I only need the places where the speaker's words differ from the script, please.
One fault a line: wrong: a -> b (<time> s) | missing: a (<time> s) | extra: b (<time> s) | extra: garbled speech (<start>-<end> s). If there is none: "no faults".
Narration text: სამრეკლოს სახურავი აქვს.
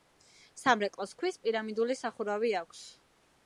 extra: ქვის პირამიდული (1.2 s)